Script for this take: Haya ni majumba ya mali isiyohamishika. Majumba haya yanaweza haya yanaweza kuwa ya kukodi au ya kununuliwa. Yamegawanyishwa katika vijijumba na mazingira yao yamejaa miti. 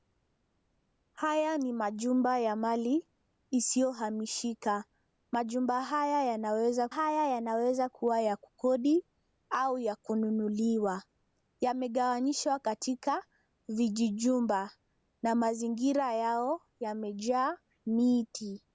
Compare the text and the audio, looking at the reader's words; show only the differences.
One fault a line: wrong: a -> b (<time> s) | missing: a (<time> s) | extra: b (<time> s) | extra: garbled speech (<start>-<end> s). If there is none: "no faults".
no faults